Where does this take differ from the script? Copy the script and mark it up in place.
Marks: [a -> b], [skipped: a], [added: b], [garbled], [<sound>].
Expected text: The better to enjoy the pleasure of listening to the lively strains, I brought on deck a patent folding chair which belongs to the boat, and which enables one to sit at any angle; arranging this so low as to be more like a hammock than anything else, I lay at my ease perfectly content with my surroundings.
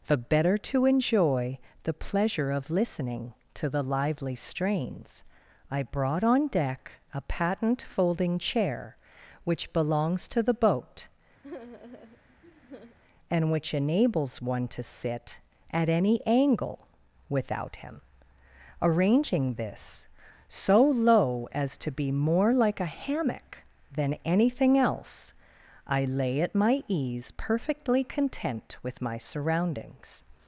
The better to enjoy the pleasure of listening to the lively strains, I brought on deck a patent folding chair which belongs to the boat, [sigh] and which enables one to sit at any angle; [added: without him] arranging this so low as to be more like a hammock than anything else, I lay at my ease perfectly content with my surroundings.